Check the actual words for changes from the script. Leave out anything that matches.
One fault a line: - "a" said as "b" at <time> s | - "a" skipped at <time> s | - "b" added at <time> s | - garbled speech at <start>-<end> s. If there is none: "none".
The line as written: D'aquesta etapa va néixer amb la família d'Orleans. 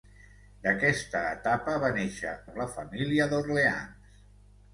none